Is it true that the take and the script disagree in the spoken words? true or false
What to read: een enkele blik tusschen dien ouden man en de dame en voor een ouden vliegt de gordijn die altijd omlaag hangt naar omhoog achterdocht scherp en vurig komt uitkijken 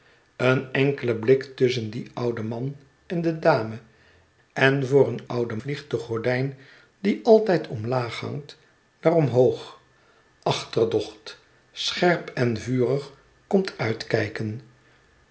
false